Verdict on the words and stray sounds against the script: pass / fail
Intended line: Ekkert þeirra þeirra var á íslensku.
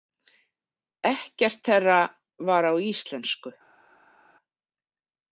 fail